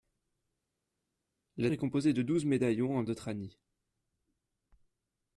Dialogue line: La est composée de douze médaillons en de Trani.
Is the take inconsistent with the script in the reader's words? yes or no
no